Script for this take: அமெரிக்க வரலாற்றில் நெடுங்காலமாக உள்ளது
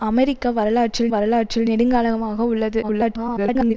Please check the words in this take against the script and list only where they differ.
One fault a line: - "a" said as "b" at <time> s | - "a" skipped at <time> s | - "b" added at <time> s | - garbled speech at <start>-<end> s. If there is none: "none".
- "வரலாற்றில்" added at 1.1 s
- garbled speech at 2.8-3.7 s